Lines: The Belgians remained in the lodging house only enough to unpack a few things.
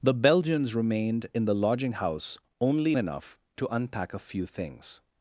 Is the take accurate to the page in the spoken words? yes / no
yes